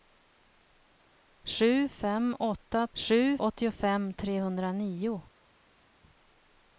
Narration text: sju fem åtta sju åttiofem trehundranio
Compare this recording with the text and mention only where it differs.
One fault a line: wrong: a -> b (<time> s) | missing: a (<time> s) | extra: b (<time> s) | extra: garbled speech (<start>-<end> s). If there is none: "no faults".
no faults